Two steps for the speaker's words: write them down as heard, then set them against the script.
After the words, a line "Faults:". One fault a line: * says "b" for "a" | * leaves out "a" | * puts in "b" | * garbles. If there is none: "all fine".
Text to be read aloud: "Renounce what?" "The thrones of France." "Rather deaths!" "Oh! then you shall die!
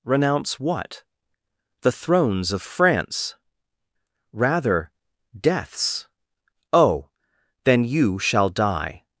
"Renounce what?" "The thrones of France." "Rather deaths!" "Oh! then you shall die!
Faults:
all fine